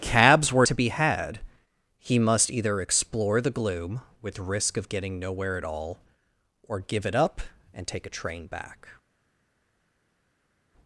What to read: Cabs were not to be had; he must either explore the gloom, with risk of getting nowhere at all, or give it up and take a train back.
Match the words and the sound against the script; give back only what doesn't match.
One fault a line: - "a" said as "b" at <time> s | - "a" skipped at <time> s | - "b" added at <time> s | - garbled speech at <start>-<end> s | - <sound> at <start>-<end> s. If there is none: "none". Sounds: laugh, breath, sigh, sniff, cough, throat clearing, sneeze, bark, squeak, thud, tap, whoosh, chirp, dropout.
- "not" skipped at 0.7 s